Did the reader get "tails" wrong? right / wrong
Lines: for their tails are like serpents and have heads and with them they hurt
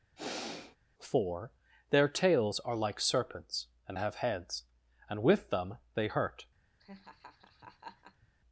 right